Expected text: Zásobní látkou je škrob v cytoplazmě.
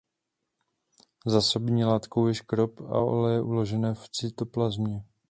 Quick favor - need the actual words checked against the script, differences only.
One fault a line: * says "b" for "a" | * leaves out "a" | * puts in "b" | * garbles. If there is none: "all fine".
* puts in "a oleje uložené"